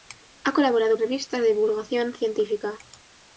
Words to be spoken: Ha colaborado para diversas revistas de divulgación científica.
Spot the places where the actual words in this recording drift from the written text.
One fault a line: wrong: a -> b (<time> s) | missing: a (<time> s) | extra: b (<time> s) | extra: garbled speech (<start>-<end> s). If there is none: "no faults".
missing: para diversas (1.0 s)